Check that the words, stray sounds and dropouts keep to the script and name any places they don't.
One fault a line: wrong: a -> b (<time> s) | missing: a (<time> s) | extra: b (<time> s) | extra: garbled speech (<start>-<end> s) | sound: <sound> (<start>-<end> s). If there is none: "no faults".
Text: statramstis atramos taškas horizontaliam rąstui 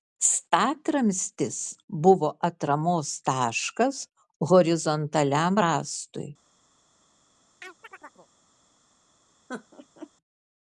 extra: buvo (2.1 s)
sound: chirp (7.6-8.3 s)
sound: laugh (9.5-10.1 s)